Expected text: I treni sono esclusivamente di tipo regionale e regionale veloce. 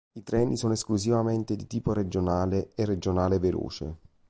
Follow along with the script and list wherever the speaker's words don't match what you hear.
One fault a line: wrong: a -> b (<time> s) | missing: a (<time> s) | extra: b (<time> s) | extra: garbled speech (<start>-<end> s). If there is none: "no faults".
no faults